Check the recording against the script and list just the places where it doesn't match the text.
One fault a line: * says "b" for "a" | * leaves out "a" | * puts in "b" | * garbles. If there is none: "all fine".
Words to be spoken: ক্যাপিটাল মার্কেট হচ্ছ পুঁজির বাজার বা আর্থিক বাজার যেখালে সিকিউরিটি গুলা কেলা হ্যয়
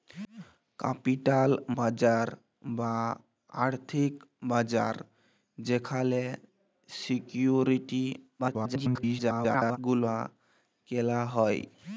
* leaves out "মার্কেট হচ্ছ পুঁজির"
* garbles